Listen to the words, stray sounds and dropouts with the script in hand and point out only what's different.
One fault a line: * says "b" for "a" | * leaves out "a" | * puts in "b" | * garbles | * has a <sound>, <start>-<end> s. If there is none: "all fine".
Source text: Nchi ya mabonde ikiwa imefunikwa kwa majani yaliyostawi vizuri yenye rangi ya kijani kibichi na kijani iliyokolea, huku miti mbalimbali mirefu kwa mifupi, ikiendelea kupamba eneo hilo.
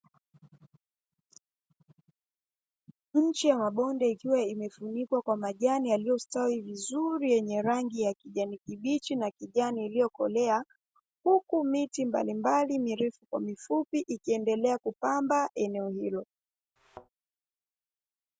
* has a thud, 16.8-17.1 s